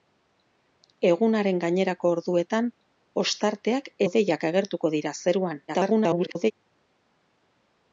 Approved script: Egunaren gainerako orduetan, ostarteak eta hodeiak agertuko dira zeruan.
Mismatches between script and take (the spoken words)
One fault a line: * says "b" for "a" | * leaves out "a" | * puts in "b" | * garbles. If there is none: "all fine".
* leaves out "eta"
* garbles